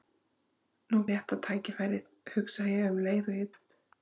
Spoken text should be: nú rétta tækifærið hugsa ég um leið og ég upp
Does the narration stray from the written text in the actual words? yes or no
no